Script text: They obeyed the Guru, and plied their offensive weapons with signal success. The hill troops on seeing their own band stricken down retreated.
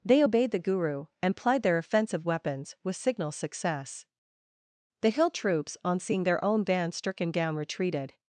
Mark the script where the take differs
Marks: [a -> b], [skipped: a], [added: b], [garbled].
They obeyed the Guru, and plied their offensive weapons with signal success. The hill troops on seeing their own band stricken down retreated.